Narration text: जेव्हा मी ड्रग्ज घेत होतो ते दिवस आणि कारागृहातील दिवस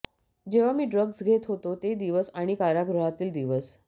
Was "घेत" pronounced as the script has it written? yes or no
yes